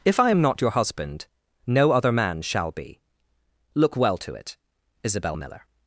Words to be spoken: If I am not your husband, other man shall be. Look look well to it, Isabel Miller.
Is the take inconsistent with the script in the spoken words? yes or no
yes